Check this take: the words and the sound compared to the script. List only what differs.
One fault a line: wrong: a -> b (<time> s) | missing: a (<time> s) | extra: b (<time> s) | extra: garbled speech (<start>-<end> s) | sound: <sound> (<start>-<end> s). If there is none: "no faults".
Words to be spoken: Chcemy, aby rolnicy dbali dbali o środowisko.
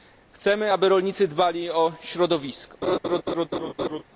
missing: dbali (1.7 s)
sound: laugh (2.8-4.0 s)